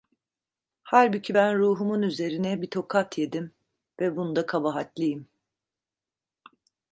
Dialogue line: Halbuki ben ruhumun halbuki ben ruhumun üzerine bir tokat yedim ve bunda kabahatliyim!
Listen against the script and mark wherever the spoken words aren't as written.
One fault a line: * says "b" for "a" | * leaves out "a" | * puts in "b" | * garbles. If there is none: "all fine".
* leaves out "halbuki ben ruhumun"